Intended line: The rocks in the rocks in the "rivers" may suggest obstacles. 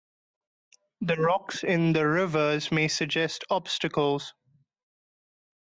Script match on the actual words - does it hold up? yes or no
no